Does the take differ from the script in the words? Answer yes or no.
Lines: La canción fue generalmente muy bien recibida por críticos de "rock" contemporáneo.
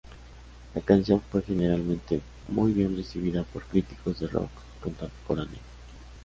no